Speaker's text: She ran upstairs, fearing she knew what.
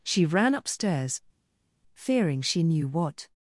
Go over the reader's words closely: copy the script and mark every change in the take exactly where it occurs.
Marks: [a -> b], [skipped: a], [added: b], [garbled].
She ran upstairs, fearing she knew what.